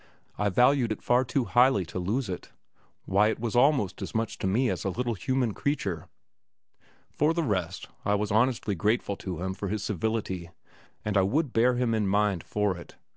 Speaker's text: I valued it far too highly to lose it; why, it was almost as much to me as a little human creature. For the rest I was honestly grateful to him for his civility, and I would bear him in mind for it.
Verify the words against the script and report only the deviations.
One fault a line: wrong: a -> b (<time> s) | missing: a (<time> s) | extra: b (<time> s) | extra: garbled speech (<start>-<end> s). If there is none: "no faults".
no faults